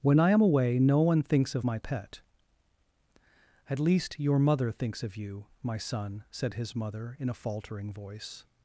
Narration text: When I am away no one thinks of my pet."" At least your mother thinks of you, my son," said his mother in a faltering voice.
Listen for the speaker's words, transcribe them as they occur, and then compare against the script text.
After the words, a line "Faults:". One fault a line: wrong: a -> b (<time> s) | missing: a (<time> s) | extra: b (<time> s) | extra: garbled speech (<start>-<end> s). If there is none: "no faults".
When I am away no one thinks of my pet."" At least your mother thinks of you, my son," said his mother in a faltering voice.
Faults:
no faults